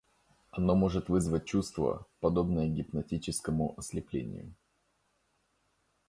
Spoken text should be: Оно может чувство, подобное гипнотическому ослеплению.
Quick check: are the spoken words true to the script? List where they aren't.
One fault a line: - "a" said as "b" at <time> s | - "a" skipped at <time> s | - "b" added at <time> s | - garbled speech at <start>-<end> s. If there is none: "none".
- "вызвать" added at 1.1 s